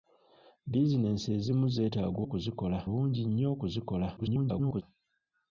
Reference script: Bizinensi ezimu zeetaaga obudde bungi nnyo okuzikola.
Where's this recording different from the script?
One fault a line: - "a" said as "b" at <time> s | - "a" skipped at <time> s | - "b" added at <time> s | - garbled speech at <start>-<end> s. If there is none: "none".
- "obudde" said as "okuzikola" at 2.2 s
- garbled speech at 4.2-4.8 s